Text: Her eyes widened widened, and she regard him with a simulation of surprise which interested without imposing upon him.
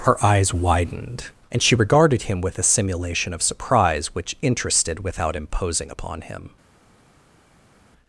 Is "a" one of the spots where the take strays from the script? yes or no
no